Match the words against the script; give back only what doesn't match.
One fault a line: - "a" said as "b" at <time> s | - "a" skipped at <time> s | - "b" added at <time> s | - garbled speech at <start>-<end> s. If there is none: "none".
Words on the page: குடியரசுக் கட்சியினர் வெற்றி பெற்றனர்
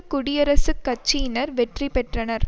none